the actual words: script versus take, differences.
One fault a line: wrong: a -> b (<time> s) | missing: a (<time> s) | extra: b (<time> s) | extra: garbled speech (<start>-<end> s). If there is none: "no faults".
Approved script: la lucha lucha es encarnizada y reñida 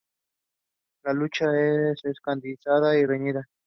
missing: lucha (1.4 s)